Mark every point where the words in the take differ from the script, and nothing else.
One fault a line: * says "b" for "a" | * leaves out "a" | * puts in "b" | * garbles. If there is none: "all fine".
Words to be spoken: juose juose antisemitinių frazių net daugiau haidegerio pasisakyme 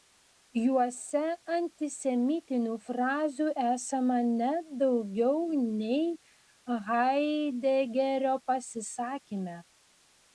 * leaves out "juose"
* puts in "esama"
* puts in "nei"